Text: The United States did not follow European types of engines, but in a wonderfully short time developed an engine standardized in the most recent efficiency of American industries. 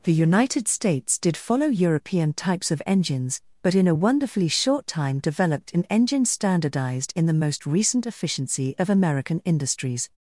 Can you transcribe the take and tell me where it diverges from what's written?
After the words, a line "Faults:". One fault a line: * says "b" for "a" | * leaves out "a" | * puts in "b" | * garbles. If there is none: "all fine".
The United States did follow European types of engines, but in a wonderfully short time developed an engine standardized in the most recent efficiency of American industries.
Faults:
* leaves out "not"